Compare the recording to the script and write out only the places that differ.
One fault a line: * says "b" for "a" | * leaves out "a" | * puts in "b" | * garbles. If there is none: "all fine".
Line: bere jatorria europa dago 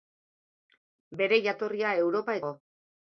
all fine